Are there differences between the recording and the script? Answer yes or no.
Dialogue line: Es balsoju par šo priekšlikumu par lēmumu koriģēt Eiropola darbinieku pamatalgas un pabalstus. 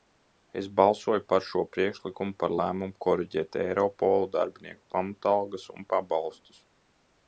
no